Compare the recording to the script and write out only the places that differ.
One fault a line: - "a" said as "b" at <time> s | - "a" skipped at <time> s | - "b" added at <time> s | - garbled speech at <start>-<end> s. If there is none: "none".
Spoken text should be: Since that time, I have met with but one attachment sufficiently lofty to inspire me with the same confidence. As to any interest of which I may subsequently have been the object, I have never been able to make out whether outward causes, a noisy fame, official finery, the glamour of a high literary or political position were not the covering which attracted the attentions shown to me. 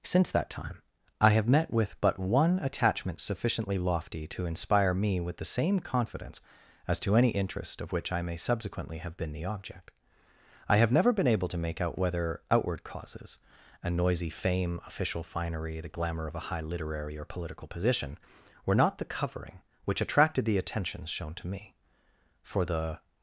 - "For the" added at 22.4 s